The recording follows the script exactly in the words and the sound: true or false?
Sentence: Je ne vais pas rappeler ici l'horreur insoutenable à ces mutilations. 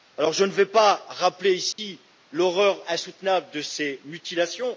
false